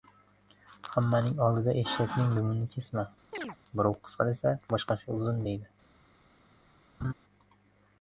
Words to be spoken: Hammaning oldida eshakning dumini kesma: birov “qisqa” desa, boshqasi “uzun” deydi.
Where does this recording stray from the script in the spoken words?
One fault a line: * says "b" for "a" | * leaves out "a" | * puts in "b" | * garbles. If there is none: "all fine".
all fine